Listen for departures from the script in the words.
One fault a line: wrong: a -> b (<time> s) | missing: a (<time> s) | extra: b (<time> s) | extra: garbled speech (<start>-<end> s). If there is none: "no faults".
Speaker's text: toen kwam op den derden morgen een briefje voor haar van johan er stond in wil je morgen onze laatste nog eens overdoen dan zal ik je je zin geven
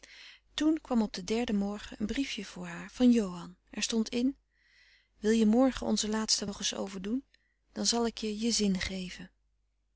no faults